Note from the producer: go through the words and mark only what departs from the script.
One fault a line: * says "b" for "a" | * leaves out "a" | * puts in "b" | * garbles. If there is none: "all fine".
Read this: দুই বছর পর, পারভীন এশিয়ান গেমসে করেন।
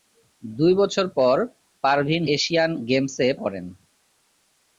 all fine